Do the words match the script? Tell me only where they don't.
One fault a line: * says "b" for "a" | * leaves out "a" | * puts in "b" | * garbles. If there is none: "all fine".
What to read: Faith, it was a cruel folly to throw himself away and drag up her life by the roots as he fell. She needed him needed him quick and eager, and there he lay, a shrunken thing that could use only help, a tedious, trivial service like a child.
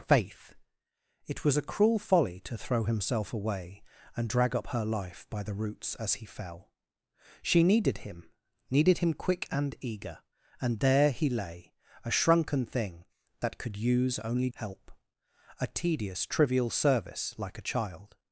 all fine